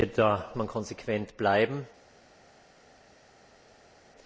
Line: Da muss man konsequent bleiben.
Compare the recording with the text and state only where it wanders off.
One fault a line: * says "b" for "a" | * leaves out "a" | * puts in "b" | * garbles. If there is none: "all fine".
* leaves out "muss"